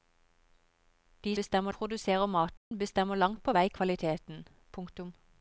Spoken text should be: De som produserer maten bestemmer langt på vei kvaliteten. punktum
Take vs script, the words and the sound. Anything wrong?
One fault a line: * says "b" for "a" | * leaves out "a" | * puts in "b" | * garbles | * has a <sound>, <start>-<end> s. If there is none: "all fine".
* says "bestemmer" for "som"
* has a dropout, 2.6-2.7 s